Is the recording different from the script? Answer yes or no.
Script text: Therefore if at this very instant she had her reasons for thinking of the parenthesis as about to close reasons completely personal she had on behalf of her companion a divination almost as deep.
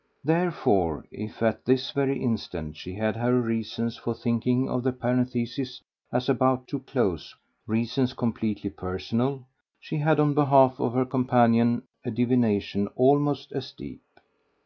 no